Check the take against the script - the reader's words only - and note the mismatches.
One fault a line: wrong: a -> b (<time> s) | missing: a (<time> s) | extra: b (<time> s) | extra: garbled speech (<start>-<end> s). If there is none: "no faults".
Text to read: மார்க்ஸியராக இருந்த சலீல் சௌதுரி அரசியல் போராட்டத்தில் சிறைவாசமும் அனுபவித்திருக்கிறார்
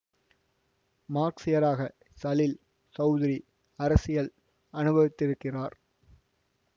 missing: இருந்த (1.8 s)
missing: போராட்டத்தில் சிறைவாசமும் (4.3 s)